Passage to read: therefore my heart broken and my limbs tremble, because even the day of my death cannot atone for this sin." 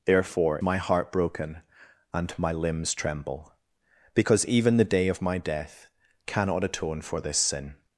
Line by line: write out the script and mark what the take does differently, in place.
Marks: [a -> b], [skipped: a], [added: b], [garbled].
therefore my heart broken and my limbs tremble, because even the day of my death cannot atone for this sin."